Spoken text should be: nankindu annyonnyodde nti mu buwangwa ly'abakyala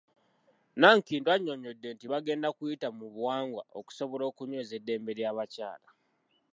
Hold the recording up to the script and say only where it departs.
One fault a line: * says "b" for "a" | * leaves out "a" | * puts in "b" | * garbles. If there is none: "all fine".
* puts in "bagenda kuyita"
* puts in "okusobola okunyweza eddembe"